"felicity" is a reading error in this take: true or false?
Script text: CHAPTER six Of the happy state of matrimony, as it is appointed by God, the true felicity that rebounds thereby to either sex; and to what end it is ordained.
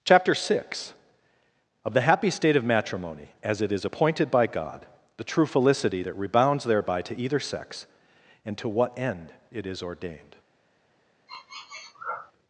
false